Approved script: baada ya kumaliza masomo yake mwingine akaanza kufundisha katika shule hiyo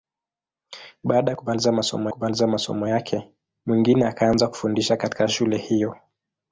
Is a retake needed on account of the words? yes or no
yes